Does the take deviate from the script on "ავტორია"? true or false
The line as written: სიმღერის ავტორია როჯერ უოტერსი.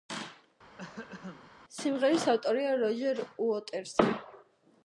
false